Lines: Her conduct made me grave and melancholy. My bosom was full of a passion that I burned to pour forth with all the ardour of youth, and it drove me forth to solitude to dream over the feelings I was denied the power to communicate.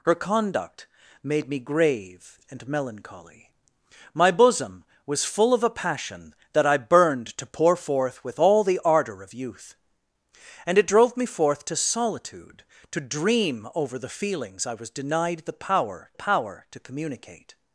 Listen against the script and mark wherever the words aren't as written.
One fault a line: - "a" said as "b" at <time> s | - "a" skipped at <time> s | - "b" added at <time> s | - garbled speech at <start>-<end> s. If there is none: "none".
- "power" added at 16.1 s